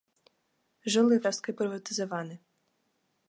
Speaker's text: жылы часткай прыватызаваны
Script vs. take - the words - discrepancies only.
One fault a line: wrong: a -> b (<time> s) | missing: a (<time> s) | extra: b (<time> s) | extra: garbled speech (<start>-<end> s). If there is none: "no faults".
no faults